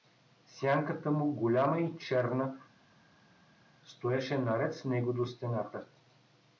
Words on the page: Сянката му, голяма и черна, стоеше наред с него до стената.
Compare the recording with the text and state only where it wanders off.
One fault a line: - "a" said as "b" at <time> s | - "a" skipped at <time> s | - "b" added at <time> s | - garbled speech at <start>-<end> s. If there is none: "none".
none